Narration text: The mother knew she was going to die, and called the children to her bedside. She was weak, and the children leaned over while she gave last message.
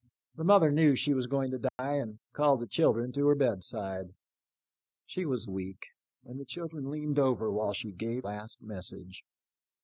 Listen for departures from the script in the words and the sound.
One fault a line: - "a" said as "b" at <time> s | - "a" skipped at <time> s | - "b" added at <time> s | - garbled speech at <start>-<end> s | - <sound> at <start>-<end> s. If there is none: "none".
- dropout at 1.7-1.8 s